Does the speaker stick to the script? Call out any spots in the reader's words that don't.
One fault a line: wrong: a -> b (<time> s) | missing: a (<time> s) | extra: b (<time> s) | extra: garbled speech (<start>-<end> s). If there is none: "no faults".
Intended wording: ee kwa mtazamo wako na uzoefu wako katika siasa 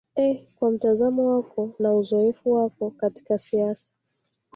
no faults